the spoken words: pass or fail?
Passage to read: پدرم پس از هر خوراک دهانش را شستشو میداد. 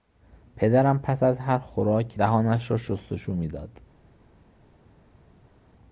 pass